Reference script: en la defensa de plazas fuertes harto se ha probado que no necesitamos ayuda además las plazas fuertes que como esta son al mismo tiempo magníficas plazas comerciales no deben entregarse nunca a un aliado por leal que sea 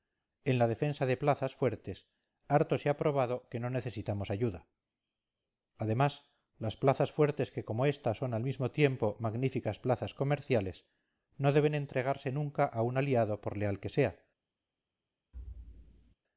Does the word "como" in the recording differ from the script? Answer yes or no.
no